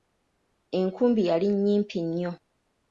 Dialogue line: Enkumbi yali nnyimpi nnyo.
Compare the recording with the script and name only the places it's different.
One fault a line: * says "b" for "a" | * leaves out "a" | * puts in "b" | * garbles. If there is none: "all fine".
all fine